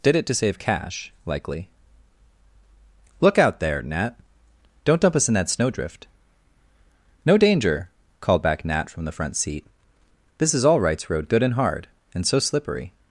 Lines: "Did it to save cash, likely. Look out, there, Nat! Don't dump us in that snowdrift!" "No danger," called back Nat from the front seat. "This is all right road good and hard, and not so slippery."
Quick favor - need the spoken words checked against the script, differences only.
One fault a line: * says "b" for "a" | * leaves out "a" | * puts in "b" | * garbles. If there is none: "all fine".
* says "rights" for "right"
* leaves out "not"